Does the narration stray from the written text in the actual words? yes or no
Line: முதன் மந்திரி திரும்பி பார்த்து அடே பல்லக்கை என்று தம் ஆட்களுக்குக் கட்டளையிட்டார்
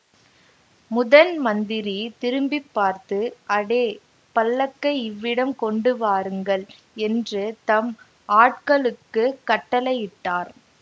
yes